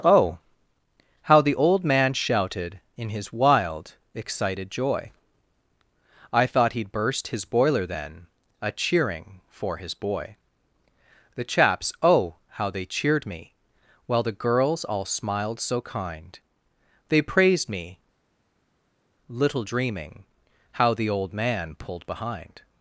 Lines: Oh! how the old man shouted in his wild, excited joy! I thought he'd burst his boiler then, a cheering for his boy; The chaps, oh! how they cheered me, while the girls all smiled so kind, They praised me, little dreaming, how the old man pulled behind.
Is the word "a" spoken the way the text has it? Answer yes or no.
yes